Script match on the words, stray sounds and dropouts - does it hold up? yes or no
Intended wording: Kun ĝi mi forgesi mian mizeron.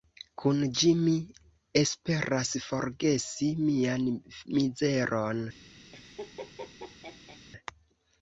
no